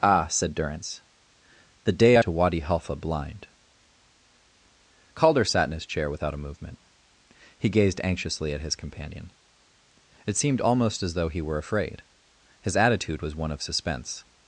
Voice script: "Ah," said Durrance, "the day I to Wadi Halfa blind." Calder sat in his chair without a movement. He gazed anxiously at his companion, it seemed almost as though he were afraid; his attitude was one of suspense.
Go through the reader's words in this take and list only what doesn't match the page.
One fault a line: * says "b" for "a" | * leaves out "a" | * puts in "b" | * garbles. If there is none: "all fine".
all fine